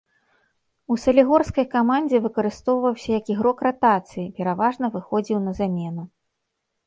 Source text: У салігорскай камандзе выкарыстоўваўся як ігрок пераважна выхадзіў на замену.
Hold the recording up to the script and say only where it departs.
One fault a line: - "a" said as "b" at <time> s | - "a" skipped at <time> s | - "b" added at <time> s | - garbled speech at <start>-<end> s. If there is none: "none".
- "ратацыі" added at 3.7 s